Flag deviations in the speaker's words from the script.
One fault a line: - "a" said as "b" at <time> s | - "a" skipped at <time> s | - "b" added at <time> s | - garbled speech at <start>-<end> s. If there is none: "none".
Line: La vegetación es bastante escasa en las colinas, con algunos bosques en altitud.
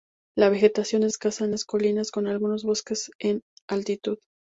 - "bastante" skipped at 1.1 s